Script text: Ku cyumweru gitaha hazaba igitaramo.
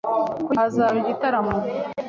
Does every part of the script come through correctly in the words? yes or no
no